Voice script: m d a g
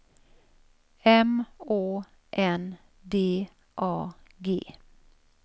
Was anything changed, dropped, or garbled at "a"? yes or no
no